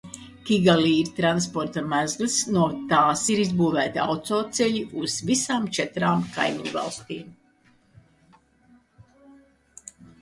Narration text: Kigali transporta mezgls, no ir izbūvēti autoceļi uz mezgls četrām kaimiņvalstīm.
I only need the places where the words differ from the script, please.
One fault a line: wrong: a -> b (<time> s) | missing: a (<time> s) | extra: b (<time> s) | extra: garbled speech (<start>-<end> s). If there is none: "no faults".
extra: ir (1.0 s)
extra: tās (2.9 s)
wrong: mezgls -> visām (5.3 s)